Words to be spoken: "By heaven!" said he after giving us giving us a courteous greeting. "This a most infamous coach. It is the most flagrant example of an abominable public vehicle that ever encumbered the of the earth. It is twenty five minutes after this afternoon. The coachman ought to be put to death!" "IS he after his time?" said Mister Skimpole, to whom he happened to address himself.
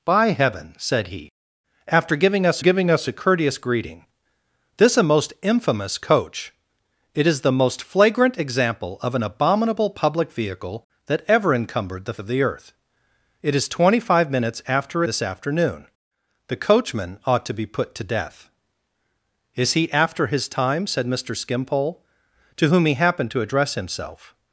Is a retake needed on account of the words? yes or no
no